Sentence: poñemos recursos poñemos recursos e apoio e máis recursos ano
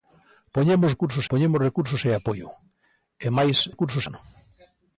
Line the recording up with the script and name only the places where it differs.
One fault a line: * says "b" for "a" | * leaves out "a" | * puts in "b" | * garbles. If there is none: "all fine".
all fine